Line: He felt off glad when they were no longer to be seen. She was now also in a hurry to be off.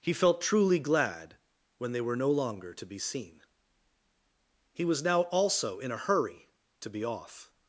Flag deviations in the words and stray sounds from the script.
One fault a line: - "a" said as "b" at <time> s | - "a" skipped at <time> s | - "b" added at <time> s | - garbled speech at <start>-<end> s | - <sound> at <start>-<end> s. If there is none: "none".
- "off" said as "truly" at 0.4 s
- "She" said as "He" at 4.7 s